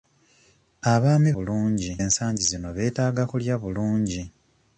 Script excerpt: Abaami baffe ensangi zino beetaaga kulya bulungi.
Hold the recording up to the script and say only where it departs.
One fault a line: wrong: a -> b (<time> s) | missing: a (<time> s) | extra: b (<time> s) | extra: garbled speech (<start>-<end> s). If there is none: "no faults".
wrong: baffe -> bulungi (1.3 s)